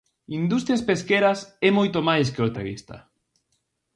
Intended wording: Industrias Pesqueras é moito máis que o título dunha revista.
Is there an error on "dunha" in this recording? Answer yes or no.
yes